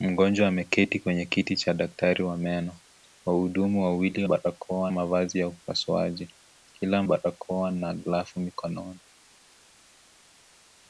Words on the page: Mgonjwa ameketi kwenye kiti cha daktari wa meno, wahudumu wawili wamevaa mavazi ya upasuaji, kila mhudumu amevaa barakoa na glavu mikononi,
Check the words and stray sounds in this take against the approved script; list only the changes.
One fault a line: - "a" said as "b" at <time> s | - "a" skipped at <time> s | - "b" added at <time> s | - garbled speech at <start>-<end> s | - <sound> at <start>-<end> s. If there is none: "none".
- "wamevaa" said as "barakoa" at 4.2 s
- "mhudumu amevaa" skipped at 7.0 s